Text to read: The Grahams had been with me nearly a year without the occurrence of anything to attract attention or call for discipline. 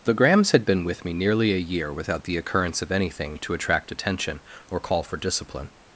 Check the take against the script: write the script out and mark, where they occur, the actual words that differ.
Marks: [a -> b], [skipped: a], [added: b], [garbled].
The Grahams had been with me nearly a year without the occurrence of anything to attract attention or call for discipline.